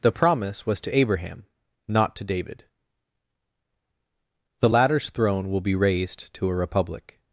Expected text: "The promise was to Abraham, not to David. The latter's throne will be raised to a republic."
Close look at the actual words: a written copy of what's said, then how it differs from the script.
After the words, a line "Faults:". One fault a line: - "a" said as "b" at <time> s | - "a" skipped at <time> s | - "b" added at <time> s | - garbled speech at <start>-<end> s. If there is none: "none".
"The promise was to Abraham, not to David. The latter's throne will be raised to a republic."
Faults:
none